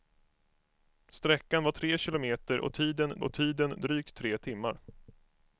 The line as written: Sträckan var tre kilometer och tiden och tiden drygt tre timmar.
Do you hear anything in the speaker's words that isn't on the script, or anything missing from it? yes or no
no